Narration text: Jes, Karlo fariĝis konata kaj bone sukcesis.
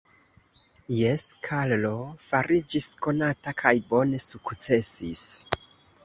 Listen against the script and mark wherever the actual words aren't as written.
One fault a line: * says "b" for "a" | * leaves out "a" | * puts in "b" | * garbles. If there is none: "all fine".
all fine